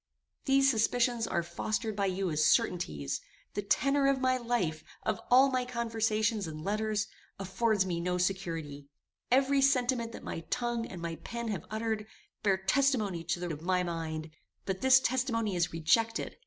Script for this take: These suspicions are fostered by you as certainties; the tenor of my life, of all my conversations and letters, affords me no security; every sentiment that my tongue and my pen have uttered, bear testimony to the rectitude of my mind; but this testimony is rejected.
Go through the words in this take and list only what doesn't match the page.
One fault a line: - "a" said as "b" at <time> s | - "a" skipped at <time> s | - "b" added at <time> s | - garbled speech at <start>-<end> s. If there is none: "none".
- "rectitude" skipped at 13.5 s